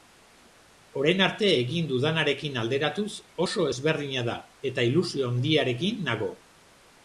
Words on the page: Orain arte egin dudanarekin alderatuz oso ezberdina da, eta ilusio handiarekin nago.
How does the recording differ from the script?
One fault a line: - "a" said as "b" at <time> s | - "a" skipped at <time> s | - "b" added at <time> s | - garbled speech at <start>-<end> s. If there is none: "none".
none